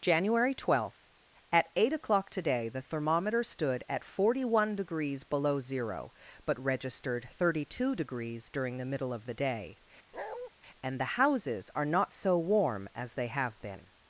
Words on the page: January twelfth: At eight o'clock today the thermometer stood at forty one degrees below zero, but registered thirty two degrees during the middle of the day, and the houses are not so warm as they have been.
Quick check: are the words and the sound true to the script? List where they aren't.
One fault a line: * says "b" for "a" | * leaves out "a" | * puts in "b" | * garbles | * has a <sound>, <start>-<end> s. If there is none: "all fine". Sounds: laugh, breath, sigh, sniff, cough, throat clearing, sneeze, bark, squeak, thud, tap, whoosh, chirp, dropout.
* has a bark, 10.1-10.5 s